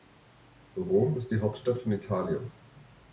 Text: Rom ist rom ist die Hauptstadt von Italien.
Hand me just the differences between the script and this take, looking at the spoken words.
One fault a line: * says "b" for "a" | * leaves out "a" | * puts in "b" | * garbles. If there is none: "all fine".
* leaves out "rom ist"